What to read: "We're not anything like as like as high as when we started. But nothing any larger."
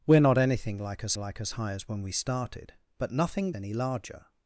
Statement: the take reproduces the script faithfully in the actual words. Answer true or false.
true